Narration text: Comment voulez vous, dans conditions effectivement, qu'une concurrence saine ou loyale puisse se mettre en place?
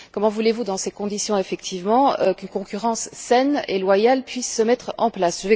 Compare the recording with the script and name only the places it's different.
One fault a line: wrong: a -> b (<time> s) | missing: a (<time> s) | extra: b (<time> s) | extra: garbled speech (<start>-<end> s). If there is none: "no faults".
extra: ces (0.8 s)
wrong: ou -> et (3.7 s)